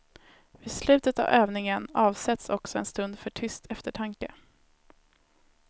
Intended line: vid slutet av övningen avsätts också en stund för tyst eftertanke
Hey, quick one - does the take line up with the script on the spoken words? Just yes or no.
yes